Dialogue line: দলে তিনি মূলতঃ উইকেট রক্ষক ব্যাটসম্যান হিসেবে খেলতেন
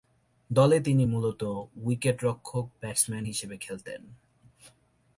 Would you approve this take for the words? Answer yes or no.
yes